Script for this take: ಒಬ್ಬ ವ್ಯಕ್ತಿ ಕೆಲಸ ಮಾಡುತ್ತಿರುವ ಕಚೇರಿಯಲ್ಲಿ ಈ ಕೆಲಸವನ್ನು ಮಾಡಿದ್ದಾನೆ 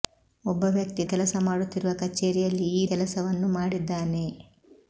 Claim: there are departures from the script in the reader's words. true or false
false